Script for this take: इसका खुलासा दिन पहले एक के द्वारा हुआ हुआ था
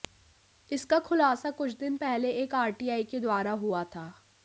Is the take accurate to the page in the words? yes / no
no